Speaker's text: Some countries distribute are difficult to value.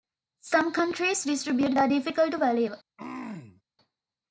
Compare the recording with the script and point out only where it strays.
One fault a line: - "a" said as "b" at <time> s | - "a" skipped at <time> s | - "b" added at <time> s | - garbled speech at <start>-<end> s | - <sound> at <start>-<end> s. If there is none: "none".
- throat clearing at 3.0-3.6 s